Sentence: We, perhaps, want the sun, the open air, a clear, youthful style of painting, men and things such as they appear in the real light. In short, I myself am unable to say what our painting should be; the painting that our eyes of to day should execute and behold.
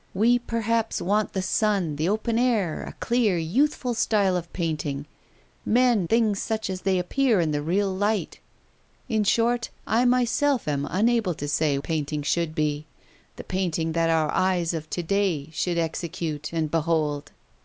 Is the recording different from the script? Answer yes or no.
yes